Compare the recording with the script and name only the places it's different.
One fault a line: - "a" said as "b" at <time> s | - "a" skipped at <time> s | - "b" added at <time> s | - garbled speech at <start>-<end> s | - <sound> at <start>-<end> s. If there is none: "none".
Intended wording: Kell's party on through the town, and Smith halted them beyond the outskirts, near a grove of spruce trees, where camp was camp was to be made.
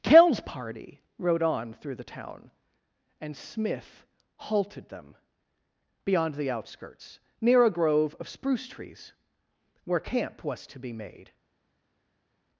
- "rode" added at 1.2 s
- "camp was" skipped at 10.7 s